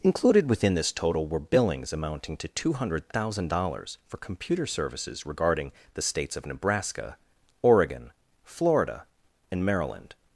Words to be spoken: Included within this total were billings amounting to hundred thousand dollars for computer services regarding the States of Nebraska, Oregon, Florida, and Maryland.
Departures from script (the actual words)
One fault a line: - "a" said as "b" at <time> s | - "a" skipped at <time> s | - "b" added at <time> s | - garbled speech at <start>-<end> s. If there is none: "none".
- "two" added at 2.5 s